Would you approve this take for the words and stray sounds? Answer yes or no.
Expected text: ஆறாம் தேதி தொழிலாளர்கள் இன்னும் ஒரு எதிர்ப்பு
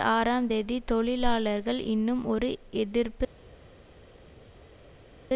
yes